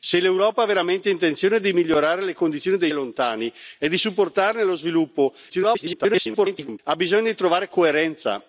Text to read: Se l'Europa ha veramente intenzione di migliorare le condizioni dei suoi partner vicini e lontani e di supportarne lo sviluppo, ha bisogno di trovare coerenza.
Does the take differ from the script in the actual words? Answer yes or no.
yes